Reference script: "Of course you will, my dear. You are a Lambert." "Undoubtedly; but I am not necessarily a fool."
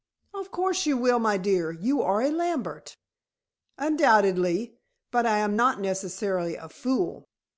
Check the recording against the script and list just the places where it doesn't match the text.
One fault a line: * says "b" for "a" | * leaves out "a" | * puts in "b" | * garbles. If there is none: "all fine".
all fine